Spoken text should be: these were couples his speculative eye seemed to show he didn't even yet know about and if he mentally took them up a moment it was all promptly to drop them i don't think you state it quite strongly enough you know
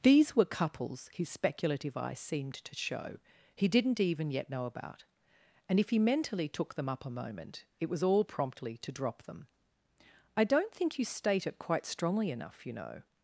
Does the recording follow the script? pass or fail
pass